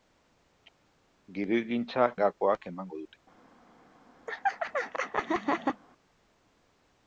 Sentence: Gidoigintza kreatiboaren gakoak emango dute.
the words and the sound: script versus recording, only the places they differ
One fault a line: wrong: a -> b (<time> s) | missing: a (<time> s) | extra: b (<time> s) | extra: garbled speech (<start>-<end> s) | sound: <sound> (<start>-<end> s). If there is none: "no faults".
missing: kreatiboaren (2.1 s)
sound: laugh (4.3-5.8 s)